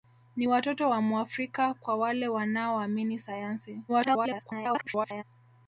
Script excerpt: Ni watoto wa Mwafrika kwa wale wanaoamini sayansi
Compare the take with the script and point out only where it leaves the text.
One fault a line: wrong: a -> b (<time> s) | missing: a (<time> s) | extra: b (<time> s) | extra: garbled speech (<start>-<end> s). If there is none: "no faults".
extra: garbled speech (3.9-5.2 s)